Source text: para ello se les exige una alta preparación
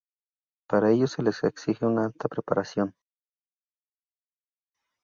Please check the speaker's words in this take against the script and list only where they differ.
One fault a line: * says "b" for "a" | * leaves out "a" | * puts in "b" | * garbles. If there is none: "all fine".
all fine